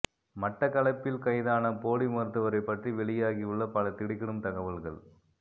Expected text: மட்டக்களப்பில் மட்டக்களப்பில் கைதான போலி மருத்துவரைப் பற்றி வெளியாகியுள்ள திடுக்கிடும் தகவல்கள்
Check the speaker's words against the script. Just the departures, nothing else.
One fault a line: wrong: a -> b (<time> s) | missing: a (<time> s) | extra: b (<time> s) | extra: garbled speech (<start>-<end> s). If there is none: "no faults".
missing: மட்டக்களப்பில் (1.2 s)
extra: பல (3.7 s)